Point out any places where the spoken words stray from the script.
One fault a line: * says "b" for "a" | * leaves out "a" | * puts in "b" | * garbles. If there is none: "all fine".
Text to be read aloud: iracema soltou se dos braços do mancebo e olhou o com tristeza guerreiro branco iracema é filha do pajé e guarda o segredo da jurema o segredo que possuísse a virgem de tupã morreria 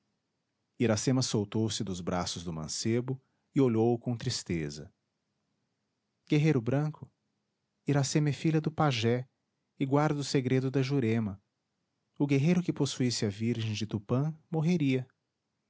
* says "guerreiro" for "segredo"